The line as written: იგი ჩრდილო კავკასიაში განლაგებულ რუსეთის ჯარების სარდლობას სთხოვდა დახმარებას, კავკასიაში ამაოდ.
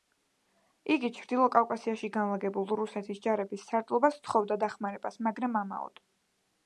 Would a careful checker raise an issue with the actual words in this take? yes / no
yes